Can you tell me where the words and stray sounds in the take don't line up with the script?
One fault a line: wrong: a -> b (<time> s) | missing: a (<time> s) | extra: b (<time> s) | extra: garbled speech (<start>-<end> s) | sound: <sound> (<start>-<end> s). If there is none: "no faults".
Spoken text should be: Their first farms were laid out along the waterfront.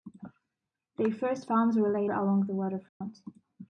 missing: out (2.1 s)
sound: dropout (2.9-3.0 s)